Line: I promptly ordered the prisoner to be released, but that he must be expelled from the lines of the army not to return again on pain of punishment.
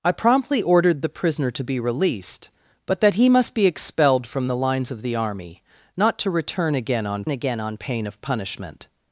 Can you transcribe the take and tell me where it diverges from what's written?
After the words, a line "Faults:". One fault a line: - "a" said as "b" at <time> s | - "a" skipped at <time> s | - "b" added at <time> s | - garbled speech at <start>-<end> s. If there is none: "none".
I promptly ordered the prisoner to be released, but that he must be expelled from the lines of the army not to return again on again on pain of punishment.
Faults:
- "again on" added at 7.3 s